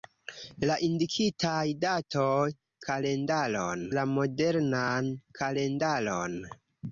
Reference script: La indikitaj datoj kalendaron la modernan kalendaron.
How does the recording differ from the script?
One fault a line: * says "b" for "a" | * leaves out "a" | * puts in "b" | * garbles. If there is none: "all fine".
all fine